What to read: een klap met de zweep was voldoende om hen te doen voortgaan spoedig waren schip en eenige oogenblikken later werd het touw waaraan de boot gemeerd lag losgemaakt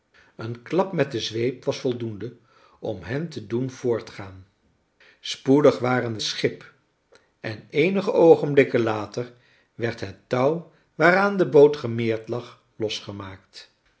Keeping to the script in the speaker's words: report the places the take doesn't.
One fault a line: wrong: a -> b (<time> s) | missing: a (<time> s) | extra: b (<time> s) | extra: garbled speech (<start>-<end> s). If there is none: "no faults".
no faults